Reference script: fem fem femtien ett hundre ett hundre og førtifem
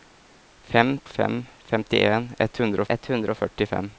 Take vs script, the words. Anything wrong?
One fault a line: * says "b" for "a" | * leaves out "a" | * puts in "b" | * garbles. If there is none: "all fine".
all fine